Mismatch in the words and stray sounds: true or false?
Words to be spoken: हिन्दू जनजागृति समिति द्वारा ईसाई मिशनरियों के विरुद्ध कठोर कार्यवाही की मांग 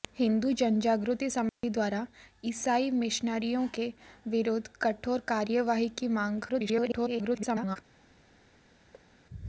true